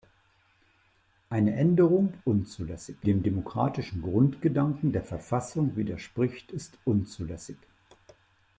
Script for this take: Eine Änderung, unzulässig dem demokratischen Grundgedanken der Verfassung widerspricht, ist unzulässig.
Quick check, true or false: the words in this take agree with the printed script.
true